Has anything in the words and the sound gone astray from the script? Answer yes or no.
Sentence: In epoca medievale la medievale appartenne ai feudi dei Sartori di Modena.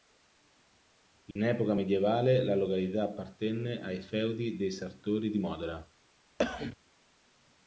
yes